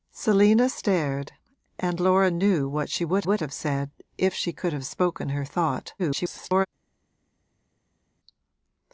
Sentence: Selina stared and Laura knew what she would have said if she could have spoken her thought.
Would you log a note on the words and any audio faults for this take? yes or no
yes